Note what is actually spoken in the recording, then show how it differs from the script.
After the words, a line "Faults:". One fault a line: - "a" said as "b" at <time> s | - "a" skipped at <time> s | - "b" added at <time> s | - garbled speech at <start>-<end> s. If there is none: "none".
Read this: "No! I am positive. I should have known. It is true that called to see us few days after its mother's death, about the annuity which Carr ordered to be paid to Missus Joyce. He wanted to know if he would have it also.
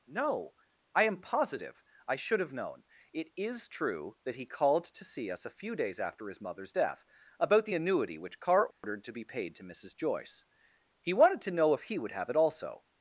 "No! I am positive. I should have known. It is true that he called to see us a few days after his mother's death, about the annuity which Carr ordered to be paid to Missus Joyce. He wanted to know if he would have it also.
Faults:
- "he" added at 4.3 s
- "a" added at 5.5 s
- "its" said as "his" at 6.3 s